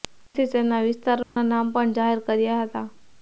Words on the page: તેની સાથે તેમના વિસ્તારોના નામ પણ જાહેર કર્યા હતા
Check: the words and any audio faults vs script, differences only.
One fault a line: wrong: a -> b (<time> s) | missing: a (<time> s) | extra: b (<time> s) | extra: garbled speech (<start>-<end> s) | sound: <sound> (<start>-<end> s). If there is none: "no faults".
missing: સાથે (0.5 s)
sound: dropout (1.2-1.4 s)